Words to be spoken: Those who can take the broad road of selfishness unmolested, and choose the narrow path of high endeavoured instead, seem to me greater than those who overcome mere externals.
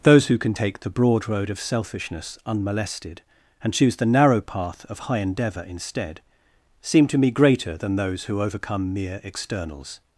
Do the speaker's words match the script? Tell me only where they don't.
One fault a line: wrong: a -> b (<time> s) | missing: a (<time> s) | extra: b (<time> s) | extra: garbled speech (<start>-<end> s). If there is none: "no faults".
wrong: endeavoured -> endeavour (5.2 s)